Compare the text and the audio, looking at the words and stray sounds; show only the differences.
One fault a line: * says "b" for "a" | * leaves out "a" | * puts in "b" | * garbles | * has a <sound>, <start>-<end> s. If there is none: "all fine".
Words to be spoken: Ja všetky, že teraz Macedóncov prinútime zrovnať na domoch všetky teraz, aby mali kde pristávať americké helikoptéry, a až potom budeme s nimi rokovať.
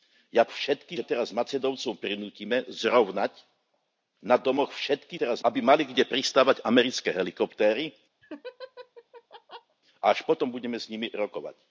* has a laugh, 8.2-9.8 s